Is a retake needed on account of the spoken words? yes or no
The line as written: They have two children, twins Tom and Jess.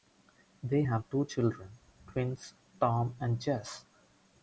no